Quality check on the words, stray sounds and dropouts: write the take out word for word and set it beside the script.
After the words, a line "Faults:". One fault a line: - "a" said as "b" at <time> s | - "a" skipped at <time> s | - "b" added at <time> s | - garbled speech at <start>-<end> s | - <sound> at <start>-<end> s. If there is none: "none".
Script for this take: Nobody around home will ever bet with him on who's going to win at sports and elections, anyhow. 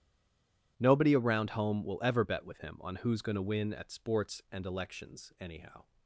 Nobody around home will ever bet with him on who's going to win at sports and elections, anyhow.
Faults:
none